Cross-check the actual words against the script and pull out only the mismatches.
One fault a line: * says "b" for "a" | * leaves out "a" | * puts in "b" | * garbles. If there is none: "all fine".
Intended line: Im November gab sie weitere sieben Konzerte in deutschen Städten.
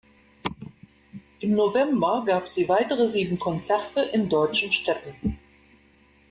all fine